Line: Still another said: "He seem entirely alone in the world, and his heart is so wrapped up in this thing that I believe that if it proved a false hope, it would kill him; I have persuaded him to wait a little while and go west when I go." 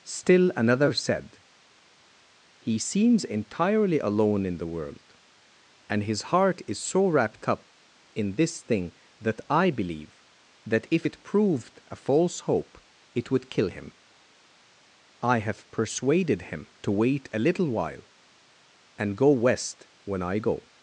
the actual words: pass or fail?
fail